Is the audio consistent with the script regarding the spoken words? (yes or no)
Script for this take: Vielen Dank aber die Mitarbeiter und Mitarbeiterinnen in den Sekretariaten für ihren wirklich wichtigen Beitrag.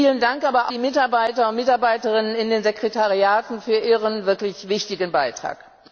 yes